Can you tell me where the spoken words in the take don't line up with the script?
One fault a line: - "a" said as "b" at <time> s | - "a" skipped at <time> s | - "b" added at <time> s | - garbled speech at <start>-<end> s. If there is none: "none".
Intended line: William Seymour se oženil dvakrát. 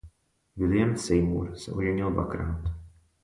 none